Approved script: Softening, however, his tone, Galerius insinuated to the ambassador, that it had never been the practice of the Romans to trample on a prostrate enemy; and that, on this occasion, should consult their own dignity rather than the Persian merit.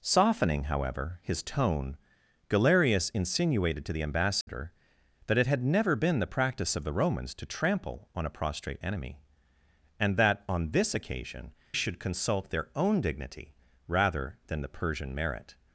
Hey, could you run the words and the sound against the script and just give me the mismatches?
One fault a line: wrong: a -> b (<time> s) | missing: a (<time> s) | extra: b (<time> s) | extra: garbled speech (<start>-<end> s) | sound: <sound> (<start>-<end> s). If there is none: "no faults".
sound: dropout (4.4-4.5 s)